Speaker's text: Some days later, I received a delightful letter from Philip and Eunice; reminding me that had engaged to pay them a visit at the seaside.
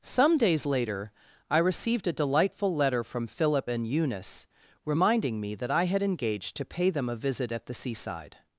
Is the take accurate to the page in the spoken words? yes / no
no